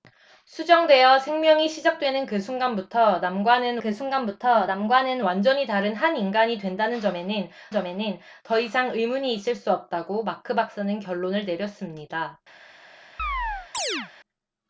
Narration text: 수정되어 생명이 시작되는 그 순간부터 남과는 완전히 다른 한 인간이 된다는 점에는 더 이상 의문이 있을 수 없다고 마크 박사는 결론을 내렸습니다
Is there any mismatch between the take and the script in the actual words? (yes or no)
yes